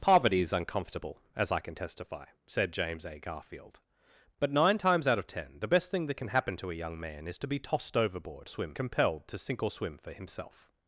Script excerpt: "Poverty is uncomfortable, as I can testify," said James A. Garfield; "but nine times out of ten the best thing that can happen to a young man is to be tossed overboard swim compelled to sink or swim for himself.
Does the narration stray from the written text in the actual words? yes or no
no